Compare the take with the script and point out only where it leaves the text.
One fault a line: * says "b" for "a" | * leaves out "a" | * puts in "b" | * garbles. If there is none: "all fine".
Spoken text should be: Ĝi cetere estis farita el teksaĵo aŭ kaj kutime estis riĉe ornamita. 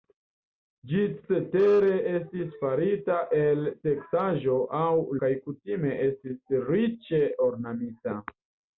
all fine